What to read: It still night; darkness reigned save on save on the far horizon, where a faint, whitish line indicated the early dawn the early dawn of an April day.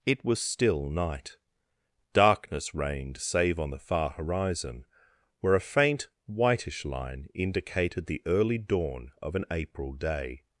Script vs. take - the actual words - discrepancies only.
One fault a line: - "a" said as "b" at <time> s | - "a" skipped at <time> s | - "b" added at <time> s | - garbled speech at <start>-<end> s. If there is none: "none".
- "was" added at 0.2 s
- "save on" skipped at 3.7 s
- "the early dawn" skipped at 9.1 s